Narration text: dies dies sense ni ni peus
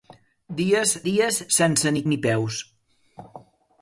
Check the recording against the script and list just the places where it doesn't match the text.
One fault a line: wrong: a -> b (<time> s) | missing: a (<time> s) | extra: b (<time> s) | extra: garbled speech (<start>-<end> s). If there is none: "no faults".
no faults